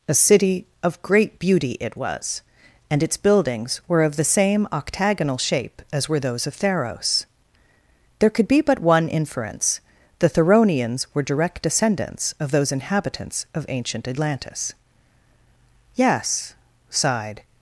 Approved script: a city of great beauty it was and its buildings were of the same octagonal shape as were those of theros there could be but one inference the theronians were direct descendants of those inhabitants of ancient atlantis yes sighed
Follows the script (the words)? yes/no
yes